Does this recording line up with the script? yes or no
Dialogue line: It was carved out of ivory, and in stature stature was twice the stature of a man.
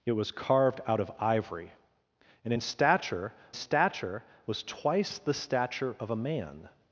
yes